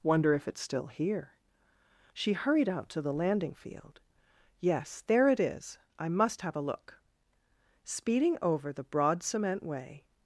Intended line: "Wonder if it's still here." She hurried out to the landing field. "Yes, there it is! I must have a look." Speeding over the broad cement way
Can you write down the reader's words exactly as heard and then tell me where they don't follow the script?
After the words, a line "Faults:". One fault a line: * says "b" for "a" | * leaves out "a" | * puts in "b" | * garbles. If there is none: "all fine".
"Wonder if it's still here." She hurried out to the landing field. "Yes, there it is! I must have a look." Speeding over the broad cement way
Faults:
all fine